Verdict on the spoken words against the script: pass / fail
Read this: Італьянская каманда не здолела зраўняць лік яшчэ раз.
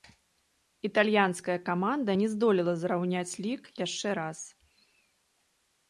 pass